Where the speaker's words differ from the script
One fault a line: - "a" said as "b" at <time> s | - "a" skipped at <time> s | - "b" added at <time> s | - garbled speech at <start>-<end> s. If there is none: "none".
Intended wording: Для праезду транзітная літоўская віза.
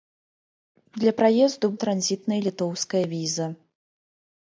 none